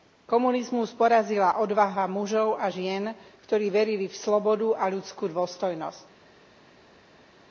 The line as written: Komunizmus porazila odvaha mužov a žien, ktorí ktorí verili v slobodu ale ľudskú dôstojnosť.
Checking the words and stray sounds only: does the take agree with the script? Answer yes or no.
no